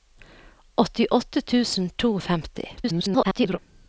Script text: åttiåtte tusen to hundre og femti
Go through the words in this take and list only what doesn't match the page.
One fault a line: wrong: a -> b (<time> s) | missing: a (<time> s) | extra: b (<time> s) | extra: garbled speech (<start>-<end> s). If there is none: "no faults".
missing: hundre (2.1 s)
extra: garbled speech (2.8-3.6 s)